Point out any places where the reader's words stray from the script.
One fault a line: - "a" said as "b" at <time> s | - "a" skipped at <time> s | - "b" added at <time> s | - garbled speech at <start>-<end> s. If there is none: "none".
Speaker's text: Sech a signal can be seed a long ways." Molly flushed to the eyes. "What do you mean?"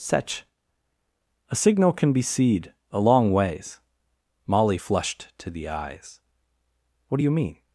none